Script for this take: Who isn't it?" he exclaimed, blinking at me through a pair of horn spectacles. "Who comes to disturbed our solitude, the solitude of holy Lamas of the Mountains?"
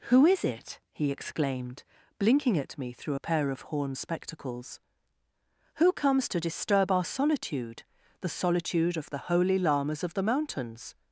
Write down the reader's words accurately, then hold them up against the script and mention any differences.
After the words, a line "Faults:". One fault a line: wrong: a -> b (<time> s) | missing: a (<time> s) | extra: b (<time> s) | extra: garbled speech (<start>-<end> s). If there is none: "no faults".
Who is it?" he exclaimed, blinking at me through a pair of horn spectacles. "Who comes to disturb our solitude, the solitude of the holy Lamas of the Mountains?"
Faults:
wrong: isn't -> is (0.2 s)
wrong: disturbed -> disturb (6.4 s)
extra: the (9.1 s)